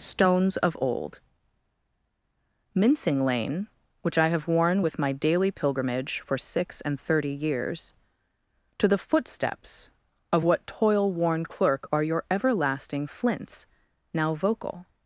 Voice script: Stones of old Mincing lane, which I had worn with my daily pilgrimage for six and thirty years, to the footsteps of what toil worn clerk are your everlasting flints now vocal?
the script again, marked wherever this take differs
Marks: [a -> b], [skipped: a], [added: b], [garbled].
Stones of old Mincing lane, which I [had -> have] worn with my daily pilgrimage for six and thirty years, to the footsteps of what toil worn clerk are your everlasting flints now vocal?